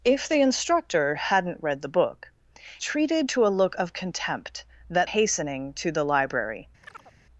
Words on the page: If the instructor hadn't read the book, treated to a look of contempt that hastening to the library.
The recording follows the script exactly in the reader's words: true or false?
true